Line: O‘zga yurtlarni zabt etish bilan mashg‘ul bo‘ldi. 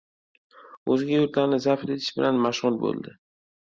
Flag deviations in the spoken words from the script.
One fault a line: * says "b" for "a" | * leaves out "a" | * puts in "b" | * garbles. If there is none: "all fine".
all fine